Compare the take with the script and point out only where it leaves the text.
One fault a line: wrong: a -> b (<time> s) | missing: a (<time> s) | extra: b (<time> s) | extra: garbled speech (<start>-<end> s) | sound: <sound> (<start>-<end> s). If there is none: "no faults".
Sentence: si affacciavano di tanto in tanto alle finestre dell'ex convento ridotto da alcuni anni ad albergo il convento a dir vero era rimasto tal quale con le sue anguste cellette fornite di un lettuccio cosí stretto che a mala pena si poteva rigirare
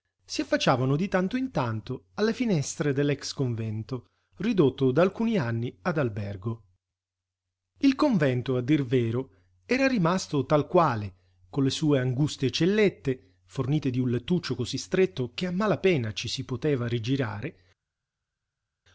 extra: ci (16.1 s)